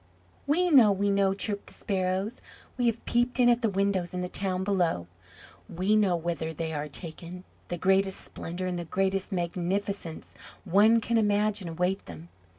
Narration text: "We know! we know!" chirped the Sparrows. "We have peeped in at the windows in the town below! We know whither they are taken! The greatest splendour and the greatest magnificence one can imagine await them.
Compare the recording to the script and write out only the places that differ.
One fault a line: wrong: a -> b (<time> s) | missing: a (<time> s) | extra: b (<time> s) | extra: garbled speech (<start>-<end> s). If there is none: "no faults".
no faults